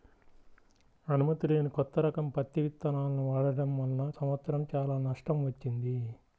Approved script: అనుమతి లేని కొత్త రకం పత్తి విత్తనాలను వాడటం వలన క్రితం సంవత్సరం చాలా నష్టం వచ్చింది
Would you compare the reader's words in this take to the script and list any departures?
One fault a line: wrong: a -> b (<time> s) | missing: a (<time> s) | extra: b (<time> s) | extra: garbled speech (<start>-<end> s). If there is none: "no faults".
missing: క్రితం (4.1 s)